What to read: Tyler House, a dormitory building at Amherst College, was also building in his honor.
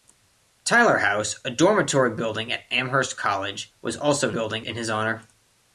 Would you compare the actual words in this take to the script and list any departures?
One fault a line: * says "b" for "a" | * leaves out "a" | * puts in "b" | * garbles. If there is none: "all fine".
all fine